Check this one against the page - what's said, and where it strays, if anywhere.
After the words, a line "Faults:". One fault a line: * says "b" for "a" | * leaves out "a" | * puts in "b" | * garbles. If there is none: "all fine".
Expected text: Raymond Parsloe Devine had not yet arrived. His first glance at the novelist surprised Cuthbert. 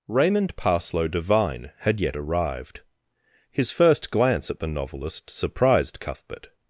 Raymond Parsloe Devine had yet arrived. His first glance at the novelist surprised Cuthbert.
Faults:
* leaves out "not"